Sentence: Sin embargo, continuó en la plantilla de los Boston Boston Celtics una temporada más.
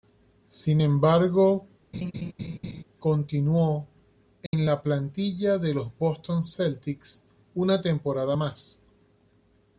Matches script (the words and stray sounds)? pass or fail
fail